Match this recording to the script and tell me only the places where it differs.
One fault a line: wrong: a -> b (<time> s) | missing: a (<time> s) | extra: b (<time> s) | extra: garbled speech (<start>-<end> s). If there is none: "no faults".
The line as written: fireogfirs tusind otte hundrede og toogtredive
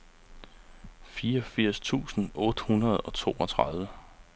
no faults